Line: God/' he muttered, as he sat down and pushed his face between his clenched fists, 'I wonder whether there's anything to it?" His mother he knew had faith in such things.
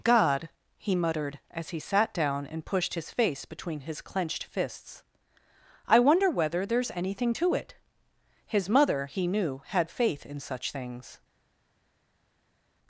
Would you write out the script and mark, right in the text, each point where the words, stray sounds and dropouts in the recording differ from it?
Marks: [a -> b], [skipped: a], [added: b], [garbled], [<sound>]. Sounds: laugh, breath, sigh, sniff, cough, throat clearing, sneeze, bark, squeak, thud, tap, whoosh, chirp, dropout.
God/' he muttered, as he sat down and pushed his face between his clenched fists, 'I wonder whether there's anything to it?" His mother he knew had faith in such things.